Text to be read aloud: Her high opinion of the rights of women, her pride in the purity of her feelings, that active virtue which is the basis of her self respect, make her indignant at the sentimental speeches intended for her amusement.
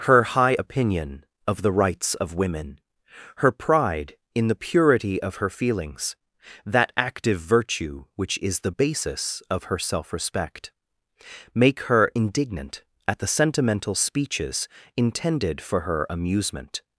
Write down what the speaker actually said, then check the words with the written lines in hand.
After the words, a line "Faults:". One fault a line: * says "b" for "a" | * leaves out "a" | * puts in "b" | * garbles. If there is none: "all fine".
Her high opinion of the rights of women, her pride in the purity of her feelings, that active virtue which is the basis of her self respect, make her indignant at the sentimental speeches intended for her amusement.
Faults:
all fine